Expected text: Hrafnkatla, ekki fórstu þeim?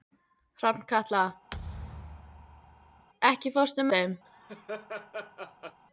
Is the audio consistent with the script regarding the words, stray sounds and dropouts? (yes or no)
no